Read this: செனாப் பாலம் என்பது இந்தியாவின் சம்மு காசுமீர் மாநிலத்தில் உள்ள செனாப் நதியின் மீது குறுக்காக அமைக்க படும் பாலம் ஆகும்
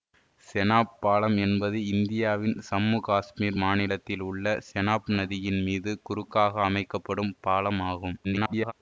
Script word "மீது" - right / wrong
right